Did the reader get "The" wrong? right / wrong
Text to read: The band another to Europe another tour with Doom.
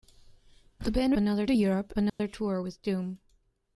right